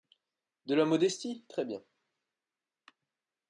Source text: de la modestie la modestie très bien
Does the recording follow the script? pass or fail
fail